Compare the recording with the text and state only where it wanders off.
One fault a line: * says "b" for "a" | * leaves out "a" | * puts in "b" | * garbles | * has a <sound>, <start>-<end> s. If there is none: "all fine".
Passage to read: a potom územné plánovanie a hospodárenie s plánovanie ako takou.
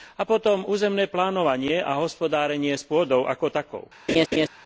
* says "pôdou" for "plánovanie"
* has a laugh, 4.1-4.5 s